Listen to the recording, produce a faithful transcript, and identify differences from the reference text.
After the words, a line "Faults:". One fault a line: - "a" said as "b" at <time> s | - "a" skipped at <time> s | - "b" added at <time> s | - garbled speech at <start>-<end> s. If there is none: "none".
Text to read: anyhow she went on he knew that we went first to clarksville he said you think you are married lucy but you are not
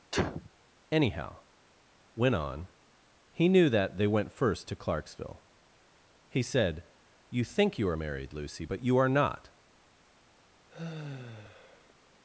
anyhow went on he knew that they went first to clarksville he said you think you are married lucy but you are not
Faults:
- "she" skipped at 1.4 s
- "we" said as "they" at 4.0 s